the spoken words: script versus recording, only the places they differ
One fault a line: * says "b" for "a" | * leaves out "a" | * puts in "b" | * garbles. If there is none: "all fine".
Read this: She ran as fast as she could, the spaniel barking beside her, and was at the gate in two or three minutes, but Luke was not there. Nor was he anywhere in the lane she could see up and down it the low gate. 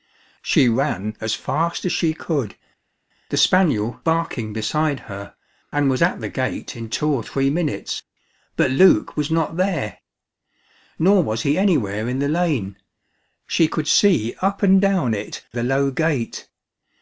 all fine